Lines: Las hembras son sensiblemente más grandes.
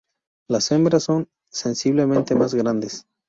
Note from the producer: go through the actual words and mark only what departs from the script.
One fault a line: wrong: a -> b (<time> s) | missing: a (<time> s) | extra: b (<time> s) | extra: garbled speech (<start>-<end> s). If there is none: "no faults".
no faults